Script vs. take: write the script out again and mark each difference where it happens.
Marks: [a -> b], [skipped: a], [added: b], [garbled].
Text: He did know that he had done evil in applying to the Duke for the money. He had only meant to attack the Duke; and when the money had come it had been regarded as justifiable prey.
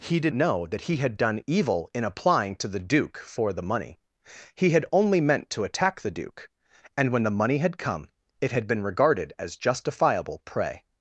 He did know that he had done evil in applying to the Duke for the money. He had only meant to attack the Duke; and when the money had come it had been regarded as justifiable prey.